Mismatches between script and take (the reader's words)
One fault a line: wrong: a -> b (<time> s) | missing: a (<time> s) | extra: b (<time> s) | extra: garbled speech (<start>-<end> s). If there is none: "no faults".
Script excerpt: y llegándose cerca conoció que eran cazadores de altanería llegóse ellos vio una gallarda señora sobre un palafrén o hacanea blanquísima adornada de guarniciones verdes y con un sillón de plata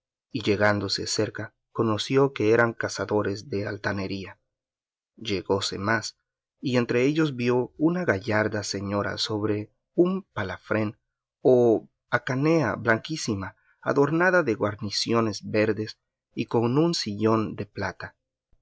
extra: más y entre (5.8 s)